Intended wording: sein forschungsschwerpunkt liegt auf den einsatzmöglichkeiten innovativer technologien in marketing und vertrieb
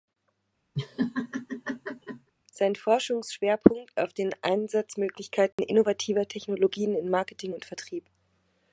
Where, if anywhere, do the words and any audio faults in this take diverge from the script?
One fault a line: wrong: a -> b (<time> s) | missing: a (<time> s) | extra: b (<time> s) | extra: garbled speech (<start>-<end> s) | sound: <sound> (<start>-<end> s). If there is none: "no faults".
sound: laugh (0.8-2.3 s)
missing: liegt (4.0 s)
sound: dropout (5.5-5.6 s)